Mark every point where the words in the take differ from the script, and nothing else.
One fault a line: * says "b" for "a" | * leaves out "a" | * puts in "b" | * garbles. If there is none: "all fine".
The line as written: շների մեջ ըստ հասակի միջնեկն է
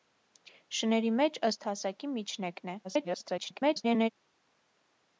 * garbles